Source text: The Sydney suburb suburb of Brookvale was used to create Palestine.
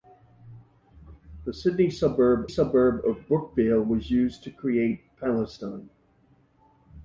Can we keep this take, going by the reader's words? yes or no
yes